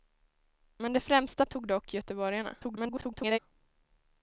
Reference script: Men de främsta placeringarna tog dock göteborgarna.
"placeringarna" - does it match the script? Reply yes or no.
no